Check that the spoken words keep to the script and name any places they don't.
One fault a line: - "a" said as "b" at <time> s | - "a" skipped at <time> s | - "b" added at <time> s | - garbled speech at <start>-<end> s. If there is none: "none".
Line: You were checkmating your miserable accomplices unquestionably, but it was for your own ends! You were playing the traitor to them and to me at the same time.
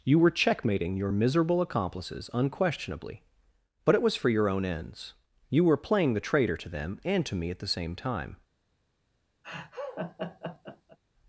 none